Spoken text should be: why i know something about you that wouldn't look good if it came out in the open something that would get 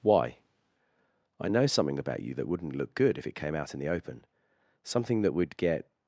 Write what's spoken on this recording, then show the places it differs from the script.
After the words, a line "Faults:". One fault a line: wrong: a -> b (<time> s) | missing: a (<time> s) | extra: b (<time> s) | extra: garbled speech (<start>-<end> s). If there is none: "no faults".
why i know something about you that wouldn't look good if it came out in the open something that would get
Faults:
no faults